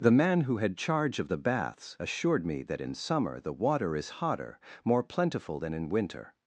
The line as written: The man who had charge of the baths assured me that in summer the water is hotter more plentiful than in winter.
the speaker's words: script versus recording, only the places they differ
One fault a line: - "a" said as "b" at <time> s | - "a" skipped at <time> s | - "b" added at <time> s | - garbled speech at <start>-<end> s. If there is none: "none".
none